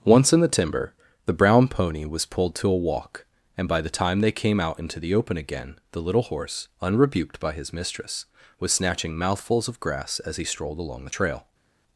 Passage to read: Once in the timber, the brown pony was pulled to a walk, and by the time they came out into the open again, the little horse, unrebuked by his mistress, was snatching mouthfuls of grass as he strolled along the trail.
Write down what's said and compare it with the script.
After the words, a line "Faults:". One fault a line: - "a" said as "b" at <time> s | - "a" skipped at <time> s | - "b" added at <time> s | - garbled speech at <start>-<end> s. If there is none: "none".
Once in the timber, the brown pony was pulled to a walk, and by the time they came out into the open again, the little horse, unrebuked by his mistress, was snatching mouthfuls of grass as he strolled along the trail.
Faults:
none